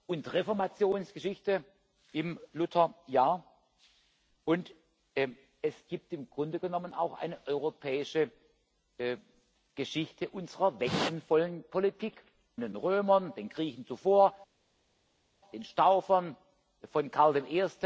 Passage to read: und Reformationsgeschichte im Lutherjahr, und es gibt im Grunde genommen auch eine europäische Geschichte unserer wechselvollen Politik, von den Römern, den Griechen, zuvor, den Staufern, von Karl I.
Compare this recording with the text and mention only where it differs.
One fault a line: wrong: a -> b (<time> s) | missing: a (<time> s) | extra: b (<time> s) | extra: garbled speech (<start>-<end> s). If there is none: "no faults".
missing: von (12.2 s)